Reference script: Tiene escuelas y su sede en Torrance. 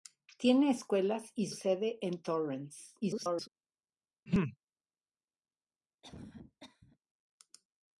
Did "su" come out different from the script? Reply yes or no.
yes